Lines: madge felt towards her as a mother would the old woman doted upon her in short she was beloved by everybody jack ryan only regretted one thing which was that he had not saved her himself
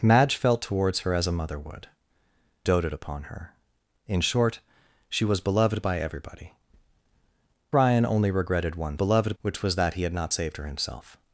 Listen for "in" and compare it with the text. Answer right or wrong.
right